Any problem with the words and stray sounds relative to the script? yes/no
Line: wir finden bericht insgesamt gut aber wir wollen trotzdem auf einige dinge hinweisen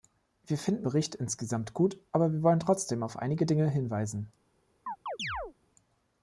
yes